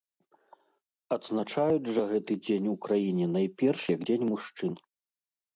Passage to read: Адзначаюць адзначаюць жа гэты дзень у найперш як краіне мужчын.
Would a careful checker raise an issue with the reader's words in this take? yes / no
yes